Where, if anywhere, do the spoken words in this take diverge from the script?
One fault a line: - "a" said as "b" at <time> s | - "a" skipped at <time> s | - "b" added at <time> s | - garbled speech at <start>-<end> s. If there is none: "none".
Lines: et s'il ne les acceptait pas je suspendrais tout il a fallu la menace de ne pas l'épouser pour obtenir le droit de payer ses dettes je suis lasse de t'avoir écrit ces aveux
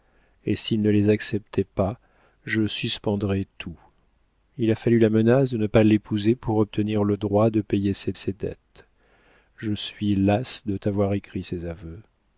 - "ses" added at 8.1 s